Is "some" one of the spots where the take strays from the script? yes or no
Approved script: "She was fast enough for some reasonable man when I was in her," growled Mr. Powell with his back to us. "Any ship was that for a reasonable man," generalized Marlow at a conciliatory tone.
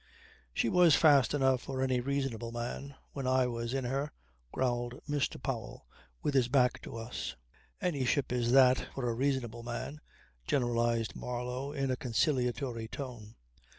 yes